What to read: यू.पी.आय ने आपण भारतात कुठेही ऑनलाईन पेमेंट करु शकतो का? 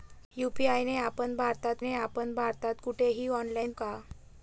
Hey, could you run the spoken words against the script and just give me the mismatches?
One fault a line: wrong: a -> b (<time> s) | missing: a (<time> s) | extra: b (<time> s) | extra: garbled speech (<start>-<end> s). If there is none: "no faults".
wrong: कुठेही ऑनलाईन पेमेंट करु शकतो -> ने आपण भारतात कुठेही ऑनलाईन (1.8 s)